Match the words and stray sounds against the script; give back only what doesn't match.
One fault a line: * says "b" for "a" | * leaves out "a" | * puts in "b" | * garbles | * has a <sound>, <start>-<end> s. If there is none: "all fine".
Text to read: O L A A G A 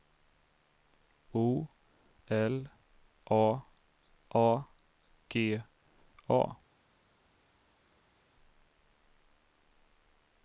all fine